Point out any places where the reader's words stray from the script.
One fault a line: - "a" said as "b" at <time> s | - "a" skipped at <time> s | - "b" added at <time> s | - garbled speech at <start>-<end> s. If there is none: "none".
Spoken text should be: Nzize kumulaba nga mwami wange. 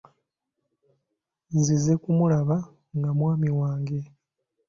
none